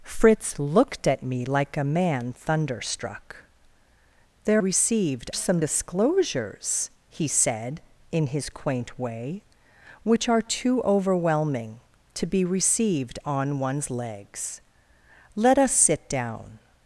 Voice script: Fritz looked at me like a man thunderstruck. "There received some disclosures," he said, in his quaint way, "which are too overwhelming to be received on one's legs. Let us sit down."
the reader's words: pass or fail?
pass